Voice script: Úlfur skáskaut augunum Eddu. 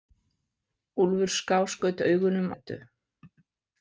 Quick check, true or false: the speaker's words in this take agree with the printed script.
true